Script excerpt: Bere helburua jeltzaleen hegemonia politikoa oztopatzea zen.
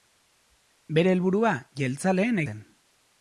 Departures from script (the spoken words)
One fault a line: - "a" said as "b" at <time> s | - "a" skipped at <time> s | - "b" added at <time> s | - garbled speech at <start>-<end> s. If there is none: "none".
- "hegemonia politikoa oztopatzea" skipped at 2.4 s